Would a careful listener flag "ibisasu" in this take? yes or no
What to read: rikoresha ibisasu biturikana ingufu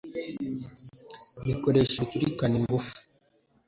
yes